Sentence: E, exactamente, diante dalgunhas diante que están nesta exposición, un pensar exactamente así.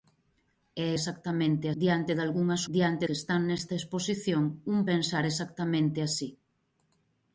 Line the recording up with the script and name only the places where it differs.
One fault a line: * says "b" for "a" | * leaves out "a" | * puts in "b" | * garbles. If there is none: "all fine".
all fine